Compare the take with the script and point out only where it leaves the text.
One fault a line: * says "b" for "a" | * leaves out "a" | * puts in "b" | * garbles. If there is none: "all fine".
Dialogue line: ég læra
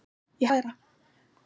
all fine